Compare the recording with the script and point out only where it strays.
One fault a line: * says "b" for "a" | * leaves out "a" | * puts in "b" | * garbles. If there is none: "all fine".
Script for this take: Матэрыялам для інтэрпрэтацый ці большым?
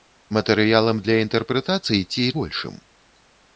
all fine